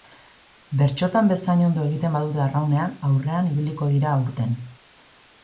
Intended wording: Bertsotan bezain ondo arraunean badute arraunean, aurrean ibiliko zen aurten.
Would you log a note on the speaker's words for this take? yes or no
yes